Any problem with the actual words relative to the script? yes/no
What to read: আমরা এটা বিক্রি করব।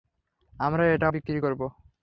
no